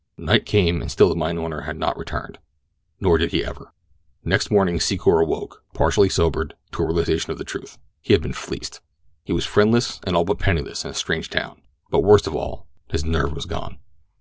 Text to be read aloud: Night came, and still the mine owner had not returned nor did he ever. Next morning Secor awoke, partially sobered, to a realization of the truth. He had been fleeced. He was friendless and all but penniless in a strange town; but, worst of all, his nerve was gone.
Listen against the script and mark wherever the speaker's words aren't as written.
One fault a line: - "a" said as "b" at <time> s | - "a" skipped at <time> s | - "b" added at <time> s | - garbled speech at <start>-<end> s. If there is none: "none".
none